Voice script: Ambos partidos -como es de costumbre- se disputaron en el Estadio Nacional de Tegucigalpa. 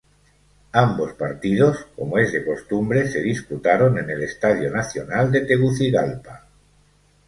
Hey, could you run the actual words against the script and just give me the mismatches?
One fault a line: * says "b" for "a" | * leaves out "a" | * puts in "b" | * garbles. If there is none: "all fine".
all fine